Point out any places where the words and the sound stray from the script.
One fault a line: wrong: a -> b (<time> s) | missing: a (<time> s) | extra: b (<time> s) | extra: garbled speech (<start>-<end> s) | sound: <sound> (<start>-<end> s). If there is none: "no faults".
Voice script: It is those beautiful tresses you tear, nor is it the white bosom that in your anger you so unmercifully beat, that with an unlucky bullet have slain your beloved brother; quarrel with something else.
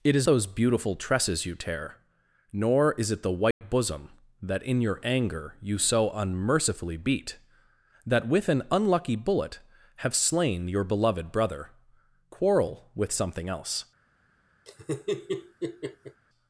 sound: dropout (3.5-3.6 s)
sound: laugh (14.7-16.2 s)